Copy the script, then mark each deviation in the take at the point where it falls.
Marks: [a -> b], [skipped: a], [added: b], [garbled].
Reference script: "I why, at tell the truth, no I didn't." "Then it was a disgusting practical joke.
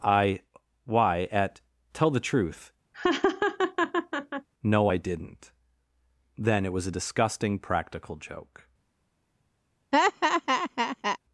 "I why, at tell the truth, no I didn't." "Then it was a disgusting practical joke.